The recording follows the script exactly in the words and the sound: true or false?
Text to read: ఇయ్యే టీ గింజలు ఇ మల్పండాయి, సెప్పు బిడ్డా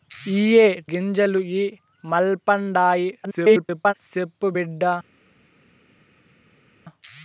false